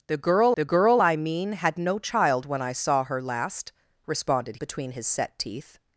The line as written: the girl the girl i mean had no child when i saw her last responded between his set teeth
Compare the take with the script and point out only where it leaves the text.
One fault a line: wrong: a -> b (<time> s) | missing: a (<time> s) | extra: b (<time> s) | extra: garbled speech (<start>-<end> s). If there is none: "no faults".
no faults